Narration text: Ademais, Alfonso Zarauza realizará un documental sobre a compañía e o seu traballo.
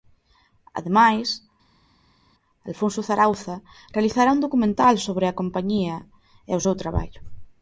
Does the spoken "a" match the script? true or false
true